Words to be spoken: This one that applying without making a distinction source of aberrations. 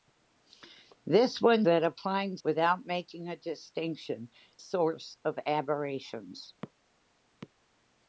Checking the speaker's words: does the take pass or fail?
pass